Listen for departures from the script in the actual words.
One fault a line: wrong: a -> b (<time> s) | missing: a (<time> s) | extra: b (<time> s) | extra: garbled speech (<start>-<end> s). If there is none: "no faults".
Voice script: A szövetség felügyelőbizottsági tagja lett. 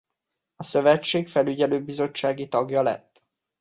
no faults